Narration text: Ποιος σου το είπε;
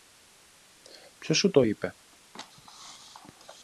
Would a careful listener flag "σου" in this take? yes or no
no